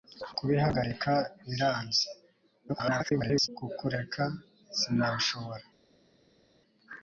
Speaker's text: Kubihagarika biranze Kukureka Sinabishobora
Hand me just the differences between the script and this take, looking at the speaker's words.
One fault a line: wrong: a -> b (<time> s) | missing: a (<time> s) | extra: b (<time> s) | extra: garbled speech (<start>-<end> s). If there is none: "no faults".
extra: garbled speech (2.7-3.5 s)